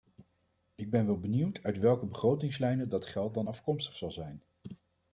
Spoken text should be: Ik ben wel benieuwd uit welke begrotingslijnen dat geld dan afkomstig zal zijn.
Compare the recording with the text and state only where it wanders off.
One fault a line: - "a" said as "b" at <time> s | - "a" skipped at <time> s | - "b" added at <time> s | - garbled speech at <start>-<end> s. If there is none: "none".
none